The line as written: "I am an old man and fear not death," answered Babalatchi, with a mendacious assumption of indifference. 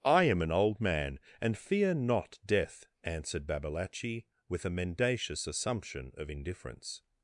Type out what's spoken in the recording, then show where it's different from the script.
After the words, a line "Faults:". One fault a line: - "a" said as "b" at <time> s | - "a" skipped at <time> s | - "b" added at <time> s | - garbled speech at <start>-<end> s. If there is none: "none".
"I am an old man and fear not death," answered Babalatchi, with a mendacious assumption of indifference.
Faults:
none